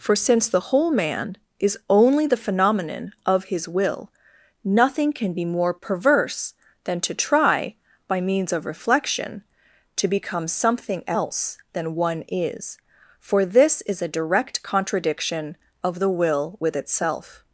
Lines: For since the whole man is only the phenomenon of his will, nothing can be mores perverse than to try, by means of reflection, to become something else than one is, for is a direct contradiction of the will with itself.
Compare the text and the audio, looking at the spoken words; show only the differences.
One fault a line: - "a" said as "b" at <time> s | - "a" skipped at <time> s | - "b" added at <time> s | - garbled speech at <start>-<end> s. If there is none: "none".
- "mores" said as "more" at 5.4 s
- "this" added at 13.4 s